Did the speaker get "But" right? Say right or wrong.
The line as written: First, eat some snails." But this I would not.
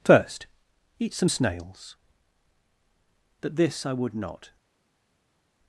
right